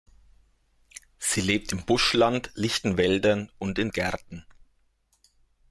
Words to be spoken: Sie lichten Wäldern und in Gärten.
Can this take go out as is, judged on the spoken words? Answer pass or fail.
fail